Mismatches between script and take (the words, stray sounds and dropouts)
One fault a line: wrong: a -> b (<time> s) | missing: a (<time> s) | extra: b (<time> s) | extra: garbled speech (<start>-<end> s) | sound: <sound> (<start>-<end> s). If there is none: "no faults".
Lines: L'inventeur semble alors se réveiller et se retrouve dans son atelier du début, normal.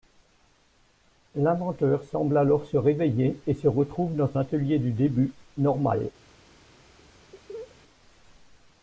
missing: son (4.3 s)
sound: laugh (7.3-7.8 s)